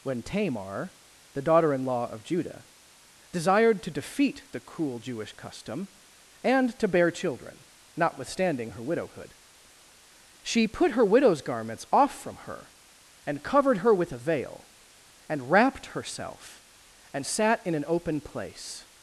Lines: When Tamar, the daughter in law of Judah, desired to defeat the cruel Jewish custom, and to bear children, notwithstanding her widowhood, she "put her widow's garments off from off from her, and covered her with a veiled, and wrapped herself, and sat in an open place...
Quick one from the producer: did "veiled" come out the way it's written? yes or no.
no